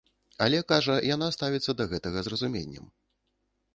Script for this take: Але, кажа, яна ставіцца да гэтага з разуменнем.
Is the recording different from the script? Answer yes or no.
no